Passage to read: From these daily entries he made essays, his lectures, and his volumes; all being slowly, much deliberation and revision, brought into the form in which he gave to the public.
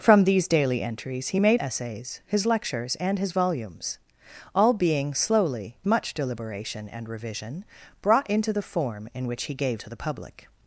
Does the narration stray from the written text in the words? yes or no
no